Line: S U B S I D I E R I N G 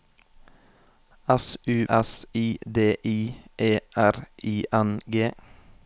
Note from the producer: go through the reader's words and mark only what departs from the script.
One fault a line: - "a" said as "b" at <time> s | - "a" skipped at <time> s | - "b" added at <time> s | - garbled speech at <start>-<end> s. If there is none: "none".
- "B" skipped at 1.9 s